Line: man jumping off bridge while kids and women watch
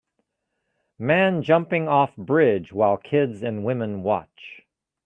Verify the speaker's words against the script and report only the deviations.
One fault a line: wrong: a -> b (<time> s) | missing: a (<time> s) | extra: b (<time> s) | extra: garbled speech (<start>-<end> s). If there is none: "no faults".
no faults